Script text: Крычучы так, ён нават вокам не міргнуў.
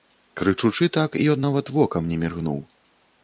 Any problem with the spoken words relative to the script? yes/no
no